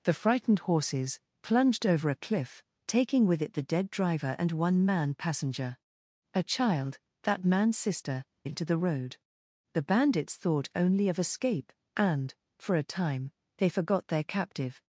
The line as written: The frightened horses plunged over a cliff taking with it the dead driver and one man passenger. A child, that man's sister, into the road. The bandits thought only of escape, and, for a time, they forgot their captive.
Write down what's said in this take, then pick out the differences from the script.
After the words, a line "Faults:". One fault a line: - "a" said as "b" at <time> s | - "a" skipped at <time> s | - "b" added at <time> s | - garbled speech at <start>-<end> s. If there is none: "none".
The frightened horses plunged over a cliff taking with it the dead driver and one man passenger. A child, that man's sister, into the road. The bandits thought only of escape, and, for a time, they forgot their captive.
Faults:
none